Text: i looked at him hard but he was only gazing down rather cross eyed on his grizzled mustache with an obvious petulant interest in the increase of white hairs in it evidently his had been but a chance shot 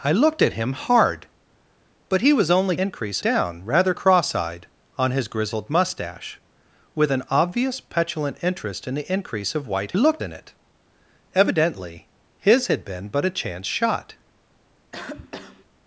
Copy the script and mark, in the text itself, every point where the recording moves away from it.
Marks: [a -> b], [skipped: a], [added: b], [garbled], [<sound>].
i looked at him hard but he was only [gazing -> increase] down rather cross eyed on his grizzled mustache with an obvious petulant interest in the increase of white [hairs -> looked] in it evidently his had been but a chance shot [cough]